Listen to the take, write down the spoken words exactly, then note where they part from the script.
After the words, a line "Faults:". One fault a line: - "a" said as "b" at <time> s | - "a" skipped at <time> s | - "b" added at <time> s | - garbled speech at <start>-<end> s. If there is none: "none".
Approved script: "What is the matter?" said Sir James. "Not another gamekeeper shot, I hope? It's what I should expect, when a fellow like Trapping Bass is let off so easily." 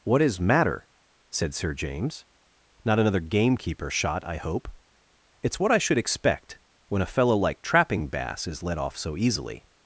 "What is matter?" said Sir James. "Not another gamekeeper shot, I hope? It's what I should expect, when a fellow like Trapping Bass is let off so easily."
Faults:
- "the" skipped at 0.4 s